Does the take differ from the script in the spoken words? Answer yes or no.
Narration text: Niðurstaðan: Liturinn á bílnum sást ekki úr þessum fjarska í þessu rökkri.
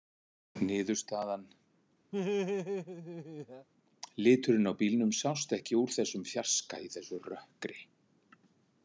no